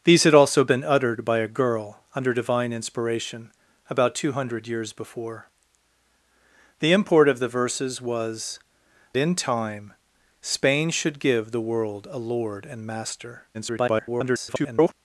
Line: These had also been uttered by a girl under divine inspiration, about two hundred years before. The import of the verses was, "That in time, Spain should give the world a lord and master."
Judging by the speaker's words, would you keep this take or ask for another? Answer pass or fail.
fail